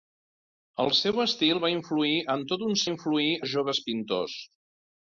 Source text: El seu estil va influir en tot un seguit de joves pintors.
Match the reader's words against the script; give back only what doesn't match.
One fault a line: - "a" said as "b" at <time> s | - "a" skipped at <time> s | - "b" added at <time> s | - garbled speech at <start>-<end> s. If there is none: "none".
- "seguit" said as "influir" at 2.9 s